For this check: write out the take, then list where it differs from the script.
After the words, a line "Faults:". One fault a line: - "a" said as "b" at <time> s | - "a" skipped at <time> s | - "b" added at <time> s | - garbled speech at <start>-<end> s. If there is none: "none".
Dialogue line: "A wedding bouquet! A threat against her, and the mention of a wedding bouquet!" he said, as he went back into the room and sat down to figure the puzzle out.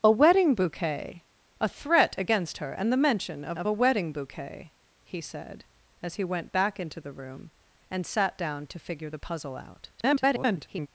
"A wedding bouquet! A threat against her, and the mention of of a wedding bouquet!" he said, as he went back into the room and sat down to figure the puzzle out. [garbled]
Faults:
- "of" added at 3.5 s
- garbled speech at 10.0-10.9 s